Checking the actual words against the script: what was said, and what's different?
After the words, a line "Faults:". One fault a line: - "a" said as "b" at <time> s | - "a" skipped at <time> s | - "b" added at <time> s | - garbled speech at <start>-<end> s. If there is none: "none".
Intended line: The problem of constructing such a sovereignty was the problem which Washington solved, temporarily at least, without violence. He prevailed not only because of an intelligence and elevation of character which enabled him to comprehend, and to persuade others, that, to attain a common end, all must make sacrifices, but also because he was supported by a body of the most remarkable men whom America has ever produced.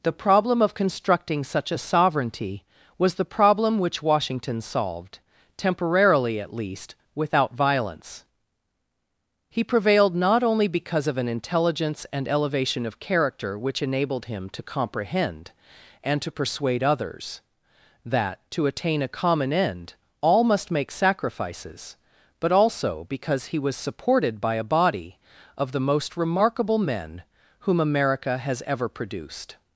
The problem of constructing such a sovereignty was the problem which Washington solved, temporarily at least, without violence. He prevailed not only because of an intelligence and elevation of character which enabled him to comprehend, and to persuade others, that, to attain a common end, all must make sacrifices, but also because he was supported by a body of the most remarkable men whom America has ever produced.
Faults:
none